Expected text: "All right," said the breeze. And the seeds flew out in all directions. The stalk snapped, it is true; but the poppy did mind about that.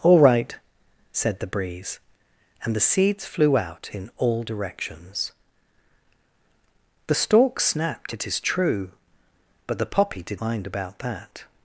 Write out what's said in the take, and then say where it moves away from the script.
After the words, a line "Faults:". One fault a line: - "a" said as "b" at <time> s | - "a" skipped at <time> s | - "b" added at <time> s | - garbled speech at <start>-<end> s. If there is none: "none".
"All right," said the breeze. And the seeds flew out in all directions. The stalk snapped, it is true; but the poppy did mind about that.
Faults:
none